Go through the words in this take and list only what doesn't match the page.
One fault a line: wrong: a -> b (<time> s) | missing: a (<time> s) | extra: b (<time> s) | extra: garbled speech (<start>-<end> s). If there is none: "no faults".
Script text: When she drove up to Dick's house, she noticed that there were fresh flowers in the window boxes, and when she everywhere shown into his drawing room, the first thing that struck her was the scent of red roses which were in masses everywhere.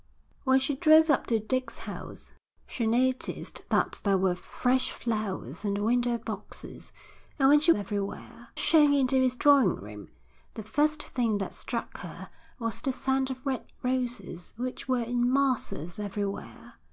no faults